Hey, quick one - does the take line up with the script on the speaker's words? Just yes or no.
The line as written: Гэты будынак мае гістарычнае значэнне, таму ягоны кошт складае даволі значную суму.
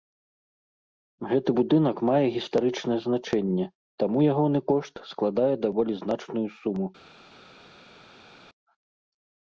yes